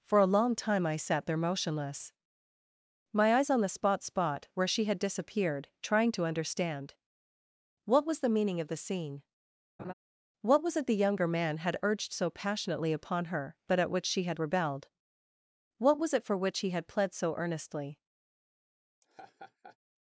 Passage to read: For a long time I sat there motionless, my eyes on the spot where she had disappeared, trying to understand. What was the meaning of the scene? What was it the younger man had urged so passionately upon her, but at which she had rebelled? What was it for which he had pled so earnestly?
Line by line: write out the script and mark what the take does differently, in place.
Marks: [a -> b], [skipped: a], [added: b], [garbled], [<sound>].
For a long time I sat there motionless, my eyes on the spot [added: spot] where she had disappeared, trying to understand. What was the meaning of the scene? [laugh] What was it the younger man had urged so passionately upon her, but at which she had rebelled? What was it for which he had pled so earnestly? [laugh]